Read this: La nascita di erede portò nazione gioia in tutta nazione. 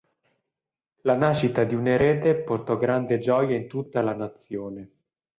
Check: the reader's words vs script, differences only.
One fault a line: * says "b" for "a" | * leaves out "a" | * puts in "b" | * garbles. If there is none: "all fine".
* puts in "un"
* says "grande" for "nazione"
* puts in "la"